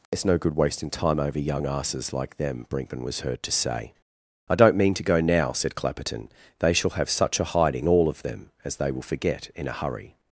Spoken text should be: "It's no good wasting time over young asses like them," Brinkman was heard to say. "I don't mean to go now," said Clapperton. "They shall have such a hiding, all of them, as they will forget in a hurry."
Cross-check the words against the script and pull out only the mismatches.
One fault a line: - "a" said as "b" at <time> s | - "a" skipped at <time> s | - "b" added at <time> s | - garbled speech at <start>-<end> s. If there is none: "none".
none